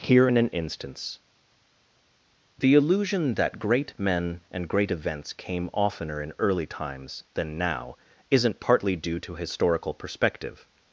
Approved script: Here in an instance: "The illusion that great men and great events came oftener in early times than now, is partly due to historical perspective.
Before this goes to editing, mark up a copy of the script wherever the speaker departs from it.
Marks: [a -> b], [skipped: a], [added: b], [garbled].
Here in an instance: "The illusion that great men and great events came oftener in early times than now, [is -> isn't] partly due to historical perspective.